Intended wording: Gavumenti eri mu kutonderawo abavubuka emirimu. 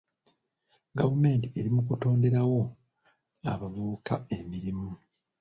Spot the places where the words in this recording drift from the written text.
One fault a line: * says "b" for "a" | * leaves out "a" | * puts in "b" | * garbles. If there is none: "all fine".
all fine